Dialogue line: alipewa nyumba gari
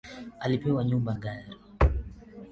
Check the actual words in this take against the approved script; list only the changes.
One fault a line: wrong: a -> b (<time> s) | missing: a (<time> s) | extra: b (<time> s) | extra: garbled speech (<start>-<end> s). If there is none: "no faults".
no faults